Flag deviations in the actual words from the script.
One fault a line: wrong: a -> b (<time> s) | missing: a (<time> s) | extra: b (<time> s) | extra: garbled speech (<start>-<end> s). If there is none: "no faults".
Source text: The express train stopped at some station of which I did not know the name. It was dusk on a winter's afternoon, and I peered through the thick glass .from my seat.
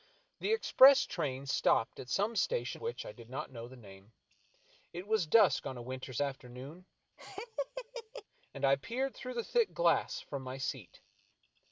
missing: of (2.8 s)